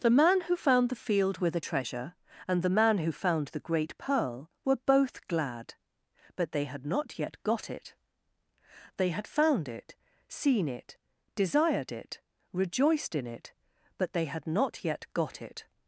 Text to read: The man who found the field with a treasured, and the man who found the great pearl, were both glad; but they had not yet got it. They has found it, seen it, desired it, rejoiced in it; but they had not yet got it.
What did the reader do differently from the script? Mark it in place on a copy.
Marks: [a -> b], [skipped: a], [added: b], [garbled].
The man who found the field with a [treasured, -> treasure] and the man who found the great pearl, were both glad; but they had not yet got it. They [has -> had] found it, seen it, desired it, rejoiced in it; but they had not yet got it.